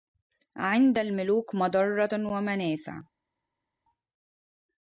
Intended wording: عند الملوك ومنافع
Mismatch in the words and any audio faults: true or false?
true